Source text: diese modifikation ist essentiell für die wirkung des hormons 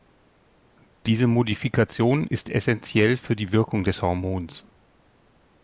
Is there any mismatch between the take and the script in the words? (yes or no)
no